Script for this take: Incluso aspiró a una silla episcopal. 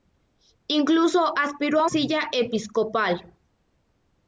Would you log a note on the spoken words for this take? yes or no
yes